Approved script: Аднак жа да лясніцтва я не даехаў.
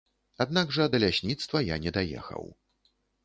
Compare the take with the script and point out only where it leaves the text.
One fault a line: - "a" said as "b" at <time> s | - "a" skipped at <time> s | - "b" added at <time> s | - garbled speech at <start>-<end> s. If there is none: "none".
none